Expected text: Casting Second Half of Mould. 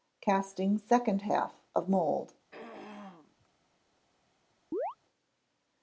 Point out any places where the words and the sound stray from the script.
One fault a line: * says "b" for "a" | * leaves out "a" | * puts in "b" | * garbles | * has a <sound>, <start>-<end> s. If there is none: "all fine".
* has a throat clearing, 2.5-3.5 s
* has a chirp, 4.7-5.0 s